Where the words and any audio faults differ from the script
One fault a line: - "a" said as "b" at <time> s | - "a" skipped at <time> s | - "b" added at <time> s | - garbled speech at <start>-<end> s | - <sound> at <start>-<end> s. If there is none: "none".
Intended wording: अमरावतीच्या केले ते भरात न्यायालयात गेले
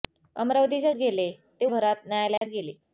- dropout at 2.4-2.4 s